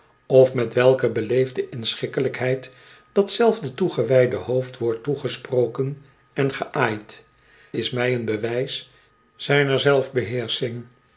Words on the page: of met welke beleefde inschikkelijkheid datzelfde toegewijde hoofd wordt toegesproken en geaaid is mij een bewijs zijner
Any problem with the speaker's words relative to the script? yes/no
no